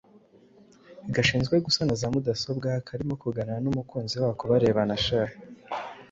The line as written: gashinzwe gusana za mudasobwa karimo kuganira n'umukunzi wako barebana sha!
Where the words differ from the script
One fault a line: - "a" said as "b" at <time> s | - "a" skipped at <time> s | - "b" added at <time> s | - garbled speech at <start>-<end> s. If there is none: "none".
none